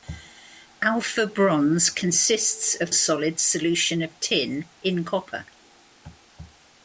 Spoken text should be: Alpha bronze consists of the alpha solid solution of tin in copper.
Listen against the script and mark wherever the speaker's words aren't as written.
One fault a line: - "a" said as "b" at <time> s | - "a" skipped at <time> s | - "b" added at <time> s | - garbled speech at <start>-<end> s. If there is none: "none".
- "the alpha" skipped at 2.9 s